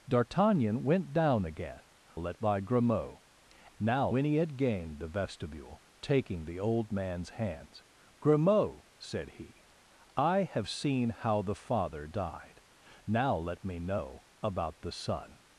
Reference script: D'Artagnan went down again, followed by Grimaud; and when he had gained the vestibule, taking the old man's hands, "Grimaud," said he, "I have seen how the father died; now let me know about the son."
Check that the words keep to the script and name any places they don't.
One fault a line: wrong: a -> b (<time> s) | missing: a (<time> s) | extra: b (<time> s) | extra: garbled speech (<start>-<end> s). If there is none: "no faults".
wrong: followed -> let (2.1 s)
wrong: and -> now (3.8 s)